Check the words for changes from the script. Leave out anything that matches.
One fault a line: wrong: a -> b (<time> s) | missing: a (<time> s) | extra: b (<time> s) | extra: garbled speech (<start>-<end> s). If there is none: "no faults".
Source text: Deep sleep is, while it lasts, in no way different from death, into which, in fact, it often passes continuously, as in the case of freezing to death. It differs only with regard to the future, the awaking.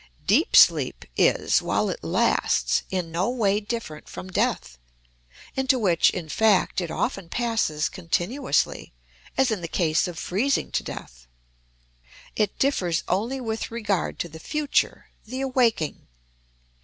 no faults